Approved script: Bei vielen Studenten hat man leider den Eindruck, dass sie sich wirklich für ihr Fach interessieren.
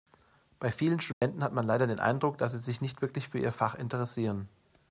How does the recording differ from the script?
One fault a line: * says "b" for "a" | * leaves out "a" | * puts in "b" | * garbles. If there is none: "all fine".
* puts in "nicht"